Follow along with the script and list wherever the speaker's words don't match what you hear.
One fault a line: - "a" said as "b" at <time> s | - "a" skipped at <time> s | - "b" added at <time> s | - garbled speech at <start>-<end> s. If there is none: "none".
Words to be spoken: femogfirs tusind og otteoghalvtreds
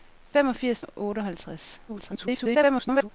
- "tusind" skipped at 0.8 s
- garbled speech at 1.9-3.1 s